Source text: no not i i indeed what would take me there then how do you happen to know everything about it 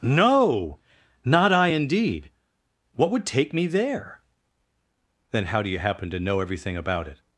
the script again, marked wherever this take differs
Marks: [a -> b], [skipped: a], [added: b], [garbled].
no not i [skipped: i] indeed what would take me there then how do you happen to know everything about it